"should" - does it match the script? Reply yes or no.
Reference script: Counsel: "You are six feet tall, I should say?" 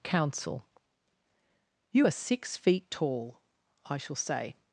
no